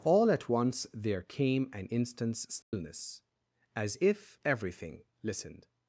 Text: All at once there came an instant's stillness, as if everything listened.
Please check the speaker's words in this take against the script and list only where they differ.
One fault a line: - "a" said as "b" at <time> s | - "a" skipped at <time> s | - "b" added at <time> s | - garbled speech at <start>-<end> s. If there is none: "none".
none